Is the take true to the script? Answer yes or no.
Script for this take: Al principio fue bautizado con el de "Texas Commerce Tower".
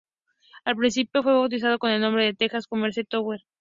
no